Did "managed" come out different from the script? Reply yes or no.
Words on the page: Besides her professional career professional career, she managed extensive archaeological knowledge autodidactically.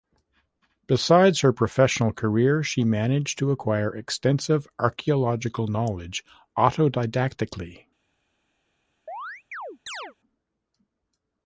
yes